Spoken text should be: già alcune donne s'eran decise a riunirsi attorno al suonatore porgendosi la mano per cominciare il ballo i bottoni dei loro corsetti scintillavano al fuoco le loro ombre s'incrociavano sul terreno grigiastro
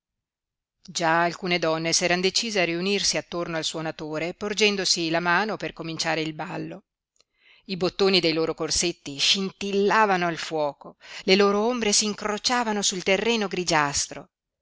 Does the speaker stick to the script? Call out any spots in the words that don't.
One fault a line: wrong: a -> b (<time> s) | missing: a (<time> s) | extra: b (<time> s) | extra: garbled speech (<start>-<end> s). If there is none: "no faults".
no faults